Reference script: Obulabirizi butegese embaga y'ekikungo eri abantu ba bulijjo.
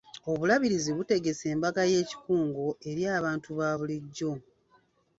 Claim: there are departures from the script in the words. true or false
false